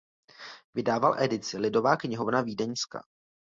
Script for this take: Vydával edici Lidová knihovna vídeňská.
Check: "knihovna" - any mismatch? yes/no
no